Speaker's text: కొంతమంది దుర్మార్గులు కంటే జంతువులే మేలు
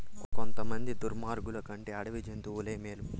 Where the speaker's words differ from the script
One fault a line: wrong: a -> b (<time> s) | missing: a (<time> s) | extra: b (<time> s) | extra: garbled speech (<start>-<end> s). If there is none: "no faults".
extra: అడవి (1.9 s)